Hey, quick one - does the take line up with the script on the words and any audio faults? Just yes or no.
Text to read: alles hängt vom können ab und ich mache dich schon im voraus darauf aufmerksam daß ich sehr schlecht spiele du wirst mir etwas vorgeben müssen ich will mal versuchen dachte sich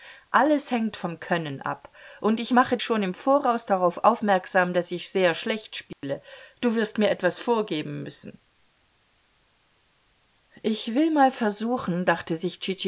no